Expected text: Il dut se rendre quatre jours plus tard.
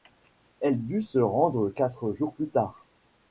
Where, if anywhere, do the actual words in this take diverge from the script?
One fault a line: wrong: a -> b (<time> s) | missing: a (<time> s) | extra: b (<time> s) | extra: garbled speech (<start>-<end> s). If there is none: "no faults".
wrong: Il -> Elle (0.6 s)